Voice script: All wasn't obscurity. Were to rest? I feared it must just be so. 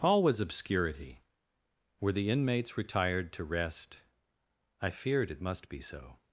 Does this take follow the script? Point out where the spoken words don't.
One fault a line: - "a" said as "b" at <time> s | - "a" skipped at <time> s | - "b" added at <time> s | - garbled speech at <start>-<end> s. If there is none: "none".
- "wasn't" said as "was" at 0.2 s
- "the inmates retired" added at 2.1 s
- "just" skipped at 5.7 s